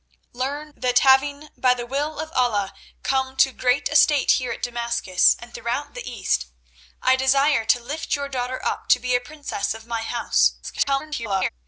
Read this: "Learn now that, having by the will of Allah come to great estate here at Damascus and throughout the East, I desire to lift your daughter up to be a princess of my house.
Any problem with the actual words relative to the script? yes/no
yes